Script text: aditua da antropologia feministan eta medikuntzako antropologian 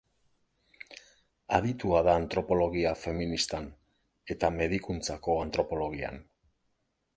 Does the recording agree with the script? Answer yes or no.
yes